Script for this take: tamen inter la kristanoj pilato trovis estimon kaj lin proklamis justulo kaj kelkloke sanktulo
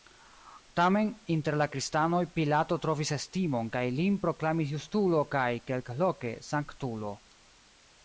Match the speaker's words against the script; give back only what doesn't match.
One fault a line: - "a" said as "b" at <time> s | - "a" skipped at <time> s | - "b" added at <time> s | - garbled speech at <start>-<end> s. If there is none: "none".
none